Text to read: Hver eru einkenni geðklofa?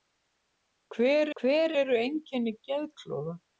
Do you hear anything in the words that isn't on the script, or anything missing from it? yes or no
yes